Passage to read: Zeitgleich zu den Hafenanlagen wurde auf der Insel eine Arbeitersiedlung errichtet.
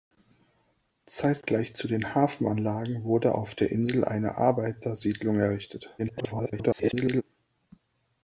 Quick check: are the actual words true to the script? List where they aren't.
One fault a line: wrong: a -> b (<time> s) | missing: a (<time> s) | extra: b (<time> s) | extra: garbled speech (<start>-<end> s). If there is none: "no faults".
extra: garbled speech (6.0-7.2 s)